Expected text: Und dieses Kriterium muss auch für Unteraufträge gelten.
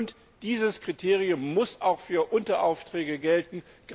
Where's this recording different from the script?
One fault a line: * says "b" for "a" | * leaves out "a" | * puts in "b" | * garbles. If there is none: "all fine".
all fine